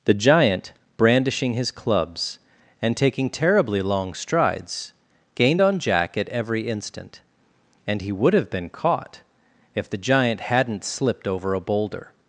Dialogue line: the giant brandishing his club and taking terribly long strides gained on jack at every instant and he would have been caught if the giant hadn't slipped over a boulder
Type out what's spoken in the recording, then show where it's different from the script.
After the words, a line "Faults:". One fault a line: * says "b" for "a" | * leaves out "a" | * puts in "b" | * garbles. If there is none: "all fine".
the giant brandishing his clubs and taking terribly long strides gained on jack at every instant and he would have been caught if the giant hadn't slipped over a boulder
Faults:
* says "clubs" for "club"